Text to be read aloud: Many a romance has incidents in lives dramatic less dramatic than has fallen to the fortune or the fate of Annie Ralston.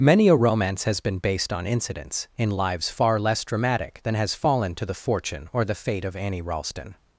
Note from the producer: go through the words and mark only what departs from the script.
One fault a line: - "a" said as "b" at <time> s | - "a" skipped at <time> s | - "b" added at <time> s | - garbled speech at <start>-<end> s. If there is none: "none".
- "been based on" added at 1.0 s
- "dramatic" said as "far" at 2.9 s